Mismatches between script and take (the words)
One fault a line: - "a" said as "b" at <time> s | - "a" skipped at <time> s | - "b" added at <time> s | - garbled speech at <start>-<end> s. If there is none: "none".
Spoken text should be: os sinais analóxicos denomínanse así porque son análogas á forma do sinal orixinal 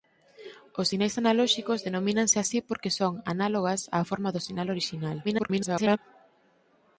- garbled speech at 5.2-6.0 s